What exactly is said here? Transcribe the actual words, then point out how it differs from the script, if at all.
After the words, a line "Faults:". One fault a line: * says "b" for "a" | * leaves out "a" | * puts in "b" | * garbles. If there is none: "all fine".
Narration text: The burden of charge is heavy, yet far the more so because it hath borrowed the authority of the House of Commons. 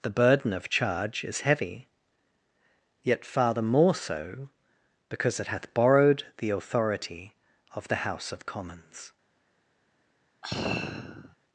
The burden of charge is heavy, yet far the more so because it hath borrowed the authority of the House of Commons.
Faults:
all fine